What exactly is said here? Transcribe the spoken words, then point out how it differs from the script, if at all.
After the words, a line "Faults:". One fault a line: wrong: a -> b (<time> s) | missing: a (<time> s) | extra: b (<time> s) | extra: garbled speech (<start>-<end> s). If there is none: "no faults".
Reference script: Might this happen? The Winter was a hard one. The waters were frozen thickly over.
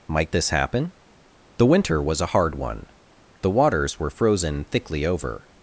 Might this happen? The Winter was a hard one. The waters were frozen thickly over.
Faults:
no faults